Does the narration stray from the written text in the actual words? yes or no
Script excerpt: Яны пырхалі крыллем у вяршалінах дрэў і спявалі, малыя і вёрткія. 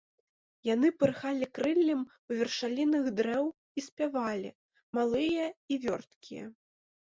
no